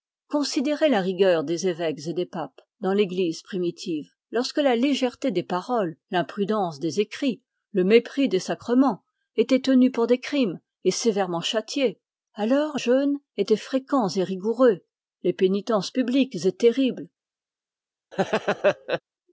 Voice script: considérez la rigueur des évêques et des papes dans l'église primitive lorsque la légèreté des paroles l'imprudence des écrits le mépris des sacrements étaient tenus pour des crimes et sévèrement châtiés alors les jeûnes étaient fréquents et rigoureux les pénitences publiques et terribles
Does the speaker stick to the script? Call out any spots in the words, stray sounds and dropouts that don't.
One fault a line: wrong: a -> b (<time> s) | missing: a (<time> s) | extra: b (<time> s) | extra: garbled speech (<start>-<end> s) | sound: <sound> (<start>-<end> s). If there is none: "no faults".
missing: les (12.8 s)
sound: laugh (18.1-19.0 s)